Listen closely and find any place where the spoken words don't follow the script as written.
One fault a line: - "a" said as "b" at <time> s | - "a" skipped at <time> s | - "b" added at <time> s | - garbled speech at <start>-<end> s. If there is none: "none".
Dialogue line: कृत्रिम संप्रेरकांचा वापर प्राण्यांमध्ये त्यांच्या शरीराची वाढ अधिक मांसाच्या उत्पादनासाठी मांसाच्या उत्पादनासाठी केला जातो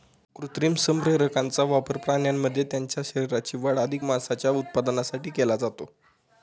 - "मांसाच्या उत्पादनासाठी" skipped at 5.3 s